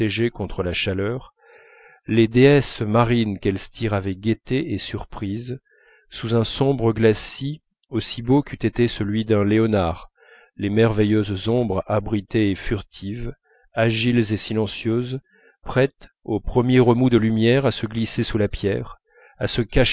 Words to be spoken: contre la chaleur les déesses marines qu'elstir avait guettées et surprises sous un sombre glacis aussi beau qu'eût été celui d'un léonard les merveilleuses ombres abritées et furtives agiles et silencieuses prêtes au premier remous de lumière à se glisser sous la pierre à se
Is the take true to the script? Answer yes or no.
yes